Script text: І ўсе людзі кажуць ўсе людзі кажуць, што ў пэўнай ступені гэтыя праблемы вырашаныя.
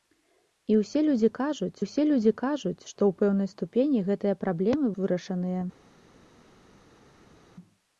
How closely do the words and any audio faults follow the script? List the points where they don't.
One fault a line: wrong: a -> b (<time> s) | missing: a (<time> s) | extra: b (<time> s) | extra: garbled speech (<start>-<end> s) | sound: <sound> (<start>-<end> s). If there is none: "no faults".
no faults